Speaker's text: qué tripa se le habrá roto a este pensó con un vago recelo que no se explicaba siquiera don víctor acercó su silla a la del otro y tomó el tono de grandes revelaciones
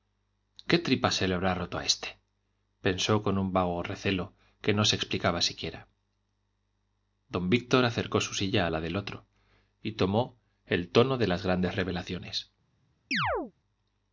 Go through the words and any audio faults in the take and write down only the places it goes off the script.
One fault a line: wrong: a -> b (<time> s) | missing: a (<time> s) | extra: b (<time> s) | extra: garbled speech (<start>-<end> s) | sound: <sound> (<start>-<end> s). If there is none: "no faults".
extra: las (11.3 s)
sound: chirp (13.1-13.5 s)